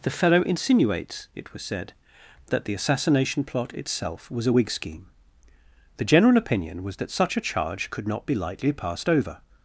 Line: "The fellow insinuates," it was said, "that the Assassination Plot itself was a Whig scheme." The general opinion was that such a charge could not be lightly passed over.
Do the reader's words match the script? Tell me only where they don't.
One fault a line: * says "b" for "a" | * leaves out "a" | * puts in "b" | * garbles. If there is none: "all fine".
all fine